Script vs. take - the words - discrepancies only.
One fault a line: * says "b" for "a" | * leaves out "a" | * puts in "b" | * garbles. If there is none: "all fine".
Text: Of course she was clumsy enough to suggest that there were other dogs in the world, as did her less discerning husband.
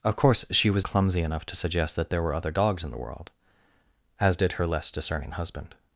all fine